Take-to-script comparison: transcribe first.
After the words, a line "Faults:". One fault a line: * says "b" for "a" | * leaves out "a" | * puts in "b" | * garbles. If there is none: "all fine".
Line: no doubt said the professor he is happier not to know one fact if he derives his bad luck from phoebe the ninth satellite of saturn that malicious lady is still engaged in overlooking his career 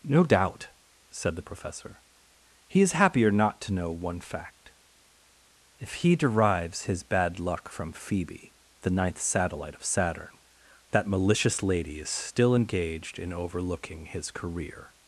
no doubt said the professor he is happier not to know one fact if he derives his bad luck from phoebe the ninth satellite of saturn that malicious lady is still engaged in overlooking his career
Faults:
all fine